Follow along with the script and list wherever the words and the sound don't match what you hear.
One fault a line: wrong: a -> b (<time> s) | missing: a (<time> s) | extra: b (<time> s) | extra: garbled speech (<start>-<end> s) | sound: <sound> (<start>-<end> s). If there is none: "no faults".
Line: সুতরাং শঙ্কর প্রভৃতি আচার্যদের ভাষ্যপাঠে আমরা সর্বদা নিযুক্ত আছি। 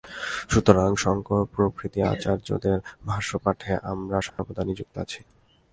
sound: dropout (4.3-4.4 s)